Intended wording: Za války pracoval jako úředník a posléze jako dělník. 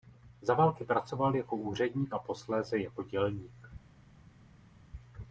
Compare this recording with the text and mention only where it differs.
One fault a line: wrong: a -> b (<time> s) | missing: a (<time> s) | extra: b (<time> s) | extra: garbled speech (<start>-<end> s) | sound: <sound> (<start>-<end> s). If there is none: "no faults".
no faults